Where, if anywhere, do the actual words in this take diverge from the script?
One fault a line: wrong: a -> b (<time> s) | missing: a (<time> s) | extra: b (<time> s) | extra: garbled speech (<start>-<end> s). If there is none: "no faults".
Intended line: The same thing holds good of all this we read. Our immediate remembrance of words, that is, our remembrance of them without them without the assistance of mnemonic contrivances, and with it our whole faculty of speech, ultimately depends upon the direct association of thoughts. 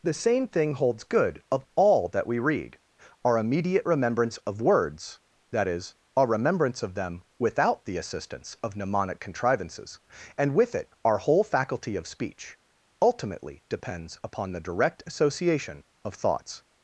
wrong: this -> that (2.1 s)
missing: them without (7.8 s)